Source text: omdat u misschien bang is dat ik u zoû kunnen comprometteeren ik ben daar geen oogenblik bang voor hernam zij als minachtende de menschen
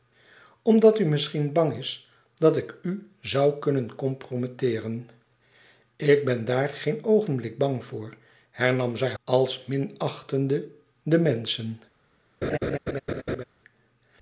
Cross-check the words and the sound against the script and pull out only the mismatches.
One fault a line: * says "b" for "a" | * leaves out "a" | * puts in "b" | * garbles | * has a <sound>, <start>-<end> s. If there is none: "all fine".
* has a laugh, 12.4-13.4 s